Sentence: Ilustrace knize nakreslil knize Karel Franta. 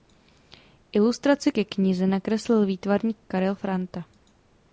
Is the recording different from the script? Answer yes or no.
yes